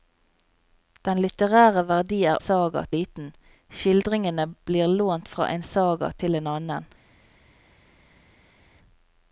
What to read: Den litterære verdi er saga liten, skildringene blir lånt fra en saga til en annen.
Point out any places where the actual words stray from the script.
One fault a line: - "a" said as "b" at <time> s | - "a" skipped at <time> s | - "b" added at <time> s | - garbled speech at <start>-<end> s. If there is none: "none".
none